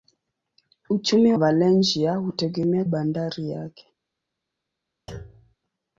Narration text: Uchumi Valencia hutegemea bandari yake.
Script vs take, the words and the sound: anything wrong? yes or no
yes